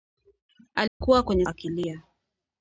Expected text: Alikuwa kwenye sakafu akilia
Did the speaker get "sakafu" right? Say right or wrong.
wrong